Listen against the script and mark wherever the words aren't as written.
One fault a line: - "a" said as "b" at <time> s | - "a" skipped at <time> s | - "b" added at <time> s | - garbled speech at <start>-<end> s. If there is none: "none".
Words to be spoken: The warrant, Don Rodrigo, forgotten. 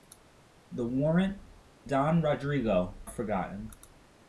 none